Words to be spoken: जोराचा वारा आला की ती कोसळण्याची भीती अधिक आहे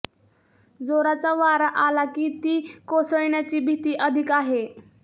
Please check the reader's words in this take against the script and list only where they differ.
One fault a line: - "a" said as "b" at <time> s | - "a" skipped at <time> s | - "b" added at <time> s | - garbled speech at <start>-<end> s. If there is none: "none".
none